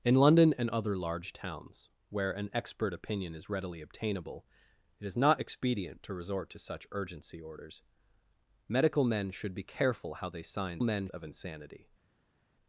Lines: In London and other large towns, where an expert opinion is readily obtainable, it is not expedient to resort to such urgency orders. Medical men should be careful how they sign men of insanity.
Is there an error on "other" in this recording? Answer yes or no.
no